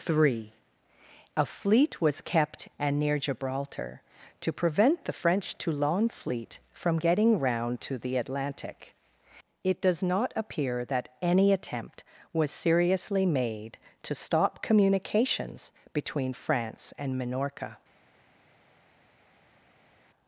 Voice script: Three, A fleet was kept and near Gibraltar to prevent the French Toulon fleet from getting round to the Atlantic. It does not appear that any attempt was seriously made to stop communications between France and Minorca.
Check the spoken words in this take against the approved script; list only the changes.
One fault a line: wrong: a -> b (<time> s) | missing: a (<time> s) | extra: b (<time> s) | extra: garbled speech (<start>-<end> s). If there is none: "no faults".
no faults